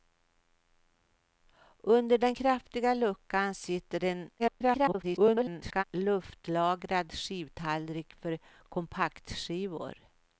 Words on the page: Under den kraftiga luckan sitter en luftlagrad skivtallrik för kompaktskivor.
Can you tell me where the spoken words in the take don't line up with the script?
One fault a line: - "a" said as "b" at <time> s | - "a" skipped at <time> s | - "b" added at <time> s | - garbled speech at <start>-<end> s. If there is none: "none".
- garbled speech at 4.4-5.8 s